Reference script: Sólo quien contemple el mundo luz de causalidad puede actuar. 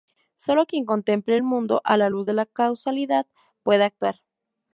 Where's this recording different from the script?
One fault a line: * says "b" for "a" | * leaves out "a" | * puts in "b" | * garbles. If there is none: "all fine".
* puts in "a la"
* puts in "la"